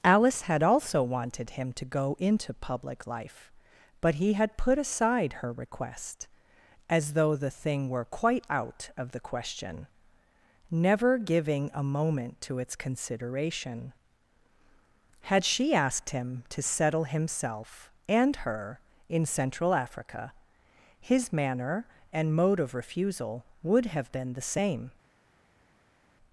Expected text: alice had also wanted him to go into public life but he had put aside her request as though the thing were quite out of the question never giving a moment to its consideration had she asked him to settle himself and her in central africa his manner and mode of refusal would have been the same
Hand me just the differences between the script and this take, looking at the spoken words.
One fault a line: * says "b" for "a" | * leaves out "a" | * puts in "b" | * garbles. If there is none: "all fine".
all fine